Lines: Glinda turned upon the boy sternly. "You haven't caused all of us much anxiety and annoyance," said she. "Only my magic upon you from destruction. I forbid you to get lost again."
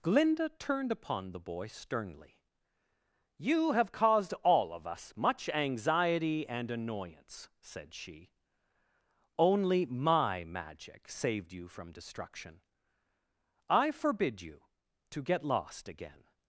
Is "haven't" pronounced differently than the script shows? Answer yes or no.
yes